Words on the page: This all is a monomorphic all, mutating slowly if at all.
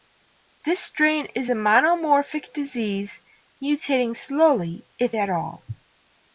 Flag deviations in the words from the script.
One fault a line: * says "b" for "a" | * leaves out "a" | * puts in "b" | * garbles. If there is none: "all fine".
* says "strain" for "all"
* says "disease" for "all"